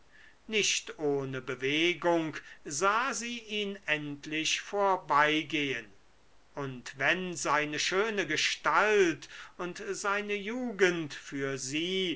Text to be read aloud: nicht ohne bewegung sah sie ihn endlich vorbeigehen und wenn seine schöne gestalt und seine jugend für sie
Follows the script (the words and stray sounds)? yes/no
yes